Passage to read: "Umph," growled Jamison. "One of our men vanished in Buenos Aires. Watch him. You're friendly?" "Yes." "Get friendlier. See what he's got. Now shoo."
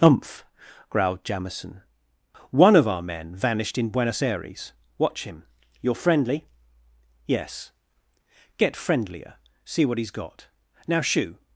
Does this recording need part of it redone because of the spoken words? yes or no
no